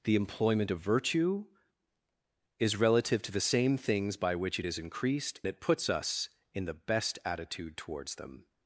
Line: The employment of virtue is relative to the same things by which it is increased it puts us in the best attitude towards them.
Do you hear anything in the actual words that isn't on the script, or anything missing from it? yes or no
no